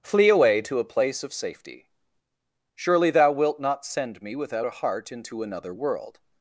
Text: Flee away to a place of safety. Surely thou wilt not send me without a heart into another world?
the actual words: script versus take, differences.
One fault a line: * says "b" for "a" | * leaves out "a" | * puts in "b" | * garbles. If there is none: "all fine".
all fine